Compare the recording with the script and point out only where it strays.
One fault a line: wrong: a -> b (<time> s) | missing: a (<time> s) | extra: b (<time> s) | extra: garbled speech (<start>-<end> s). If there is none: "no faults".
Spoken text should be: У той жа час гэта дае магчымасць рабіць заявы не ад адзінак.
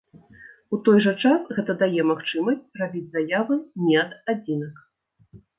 no faults